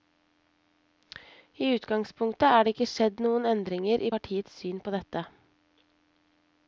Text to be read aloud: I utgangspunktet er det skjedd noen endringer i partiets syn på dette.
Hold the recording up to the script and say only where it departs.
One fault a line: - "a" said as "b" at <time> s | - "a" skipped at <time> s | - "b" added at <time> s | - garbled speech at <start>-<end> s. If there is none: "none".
- "ikke" added at 2.8 s